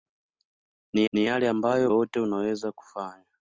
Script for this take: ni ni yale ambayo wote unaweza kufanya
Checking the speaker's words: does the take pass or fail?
pass